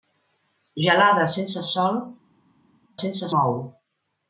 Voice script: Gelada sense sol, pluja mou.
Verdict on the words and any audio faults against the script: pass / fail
fail